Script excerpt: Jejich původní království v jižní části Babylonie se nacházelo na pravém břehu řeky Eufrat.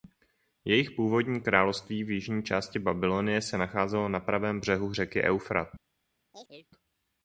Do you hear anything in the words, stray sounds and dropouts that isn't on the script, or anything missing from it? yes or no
yes